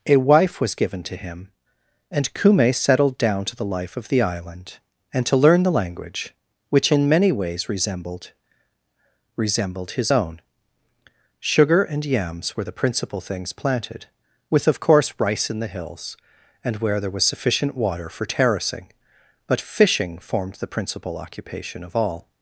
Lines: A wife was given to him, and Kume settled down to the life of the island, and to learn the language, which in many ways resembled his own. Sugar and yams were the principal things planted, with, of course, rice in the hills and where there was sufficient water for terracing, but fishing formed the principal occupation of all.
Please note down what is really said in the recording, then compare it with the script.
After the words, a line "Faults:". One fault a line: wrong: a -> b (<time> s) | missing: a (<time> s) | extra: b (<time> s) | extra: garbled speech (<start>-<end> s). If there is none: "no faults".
A wife was given to him, and Kume settled down to the life of the island, and to learn the language, which in many ways resembled resembled his own. Sugar and yams were the principal things planted, with, of course, rice in the hills and where there was sufficient water for terracing, but fishing formed the principal occupation of all.
Faults:
extra: resembled (9.4 s)